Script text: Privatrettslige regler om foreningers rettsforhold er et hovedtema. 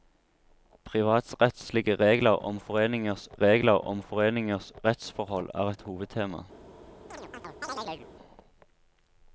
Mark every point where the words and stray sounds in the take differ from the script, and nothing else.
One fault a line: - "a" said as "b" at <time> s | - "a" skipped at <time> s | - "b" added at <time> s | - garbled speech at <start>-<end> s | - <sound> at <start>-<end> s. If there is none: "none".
- "regler om foreningers" added at 3.4 s
- chirp at 7.1-8.1 s